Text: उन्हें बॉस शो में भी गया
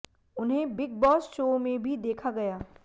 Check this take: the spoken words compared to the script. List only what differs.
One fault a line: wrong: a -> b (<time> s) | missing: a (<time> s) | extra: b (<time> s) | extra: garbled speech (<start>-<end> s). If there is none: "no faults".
extra: बिग (0.8 s)
extra: देखा (2.0 s)